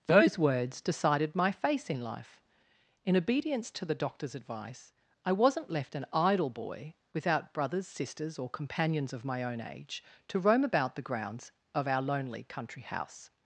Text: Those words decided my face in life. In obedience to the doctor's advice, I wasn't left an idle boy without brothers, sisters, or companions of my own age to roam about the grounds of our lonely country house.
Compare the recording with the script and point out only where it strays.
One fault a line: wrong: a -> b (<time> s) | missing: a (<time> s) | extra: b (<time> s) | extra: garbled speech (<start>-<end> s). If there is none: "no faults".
no faults